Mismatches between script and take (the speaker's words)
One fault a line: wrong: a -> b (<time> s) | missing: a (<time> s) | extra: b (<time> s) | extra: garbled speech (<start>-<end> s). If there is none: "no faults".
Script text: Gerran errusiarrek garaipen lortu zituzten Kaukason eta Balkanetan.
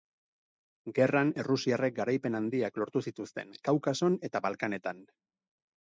extra: handiak (2.4 s)